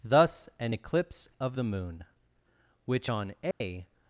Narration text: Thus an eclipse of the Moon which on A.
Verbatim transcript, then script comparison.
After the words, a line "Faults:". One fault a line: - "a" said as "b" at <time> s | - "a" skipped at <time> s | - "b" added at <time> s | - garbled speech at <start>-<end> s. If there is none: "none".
Thus an eclipse of the Moon which on A.
Faults:
none